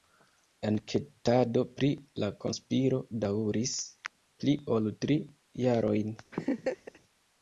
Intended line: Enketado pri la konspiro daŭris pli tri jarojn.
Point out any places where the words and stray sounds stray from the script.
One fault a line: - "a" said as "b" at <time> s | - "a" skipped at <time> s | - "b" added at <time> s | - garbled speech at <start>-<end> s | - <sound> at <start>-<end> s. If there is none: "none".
- "ol" added at 4.8 s
- laugh at 6.3-7.0 s